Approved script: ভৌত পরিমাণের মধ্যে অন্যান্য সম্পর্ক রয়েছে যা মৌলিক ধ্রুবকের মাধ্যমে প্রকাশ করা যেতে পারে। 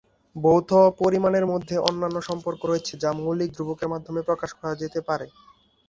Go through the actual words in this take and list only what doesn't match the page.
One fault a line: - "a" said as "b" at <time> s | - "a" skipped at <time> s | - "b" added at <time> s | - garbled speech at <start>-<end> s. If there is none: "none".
none